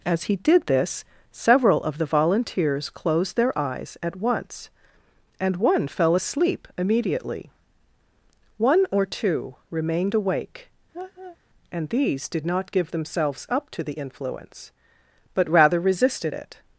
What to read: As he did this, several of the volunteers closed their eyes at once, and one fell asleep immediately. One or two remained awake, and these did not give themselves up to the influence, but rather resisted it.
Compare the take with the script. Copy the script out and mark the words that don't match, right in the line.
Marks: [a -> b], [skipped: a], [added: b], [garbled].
As he did this, several of the volunteers closed their eyes at once, and one fell asleep immediately. One or two remained awake, and these did not give themselves up to the influence, but rather resisted it.